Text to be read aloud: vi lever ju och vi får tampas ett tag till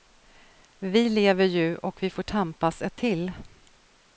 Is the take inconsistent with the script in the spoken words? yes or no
yes